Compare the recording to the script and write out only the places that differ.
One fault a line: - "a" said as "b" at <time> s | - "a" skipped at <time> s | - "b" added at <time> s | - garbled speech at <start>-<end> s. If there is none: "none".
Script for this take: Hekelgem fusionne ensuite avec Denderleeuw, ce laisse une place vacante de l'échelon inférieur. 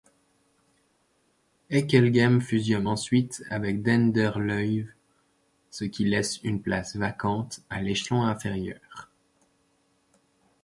- "qui" added at 5.8 s
- "de" said as "à" at 7.7 s